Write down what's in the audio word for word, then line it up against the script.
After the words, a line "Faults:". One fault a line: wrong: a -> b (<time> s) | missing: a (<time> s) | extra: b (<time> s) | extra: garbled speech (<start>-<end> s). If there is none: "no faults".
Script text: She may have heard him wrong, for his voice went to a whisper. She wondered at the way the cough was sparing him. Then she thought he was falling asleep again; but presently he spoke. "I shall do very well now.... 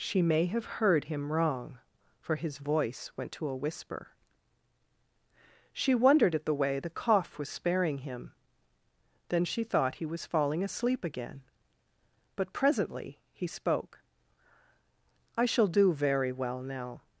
She may have heard him wrong, for his voice went to a whisper. She wondered at the way the cough was sparing him. Then she thought he was falling asleep again; but presently he spoke. "I shall do very well now....
Faults:
no faults